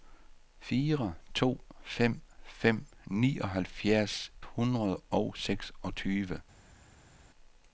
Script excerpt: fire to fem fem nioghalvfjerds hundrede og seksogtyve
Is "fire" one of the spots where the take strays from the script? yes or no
no